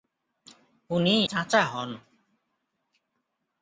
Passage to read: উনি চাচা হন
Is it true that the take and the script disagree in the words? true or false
false